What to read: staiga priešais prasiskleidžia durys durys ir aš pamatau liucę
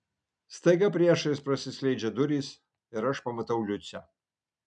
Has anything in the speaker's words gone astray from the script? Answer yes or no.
yes